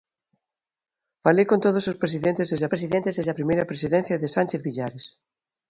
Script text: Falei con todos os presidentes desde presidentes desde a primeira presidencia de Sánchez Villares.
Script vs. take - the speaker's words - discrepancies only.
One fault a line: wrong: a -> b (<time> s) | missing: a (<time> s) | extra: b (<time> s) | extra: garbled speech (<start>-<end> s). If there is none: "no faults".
no faults